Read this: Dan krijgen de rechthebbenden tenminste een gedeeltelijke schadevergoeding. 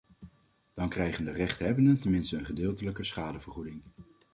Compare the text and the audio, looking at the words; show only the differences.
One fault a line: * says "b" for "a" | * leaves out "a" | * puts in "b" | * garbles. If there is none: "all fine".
all fine